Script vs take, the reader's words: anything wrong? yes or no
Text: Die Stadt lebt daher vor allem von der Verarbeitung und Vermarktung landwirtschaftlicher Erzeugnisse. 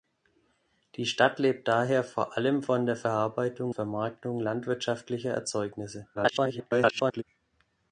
yes